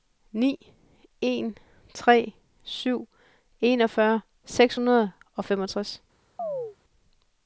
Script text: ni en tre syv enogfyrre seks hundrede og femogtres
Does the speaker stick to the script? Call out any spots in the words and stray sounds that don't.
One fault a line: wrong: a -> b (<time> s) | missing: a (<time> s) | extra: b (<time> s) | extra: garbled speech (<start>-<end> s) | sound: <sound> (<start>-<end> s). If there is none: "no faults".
sound: chirp (6.4-6.8 s)